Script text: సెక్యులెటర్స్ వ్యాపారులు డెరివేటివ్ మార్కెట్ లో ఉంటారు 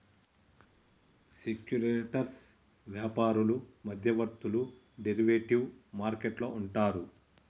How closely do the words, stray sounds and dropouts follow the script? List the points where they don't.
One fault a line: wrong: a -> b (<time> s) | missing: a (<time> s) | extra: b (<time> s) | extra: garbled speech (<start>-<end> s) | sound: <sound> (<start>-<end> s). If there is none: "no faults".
extra: మధ్యవర్తులు (3.8 s)